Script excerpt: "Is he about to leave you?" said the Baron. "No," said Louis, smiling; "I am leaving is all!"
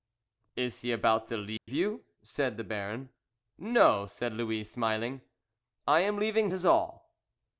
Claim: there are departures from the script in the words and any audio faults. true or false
true